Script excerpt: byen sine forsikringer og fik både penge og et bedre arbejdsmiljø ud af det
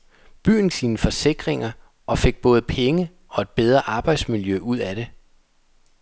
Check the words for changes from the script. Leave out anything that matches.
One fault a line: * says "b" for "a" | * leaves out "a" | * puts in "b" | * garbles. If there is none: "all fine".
all fine